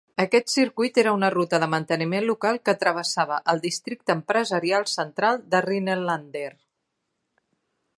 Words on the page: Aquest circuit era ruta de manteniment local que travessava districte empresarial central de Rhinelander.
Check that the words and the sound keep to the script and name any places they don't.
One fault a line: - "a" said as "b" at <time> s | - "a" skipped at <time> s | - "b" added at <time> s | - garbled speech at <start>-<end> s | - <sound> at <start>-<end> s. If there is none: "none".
- "una" added at 1.2 s
- "el" added at 3.5 s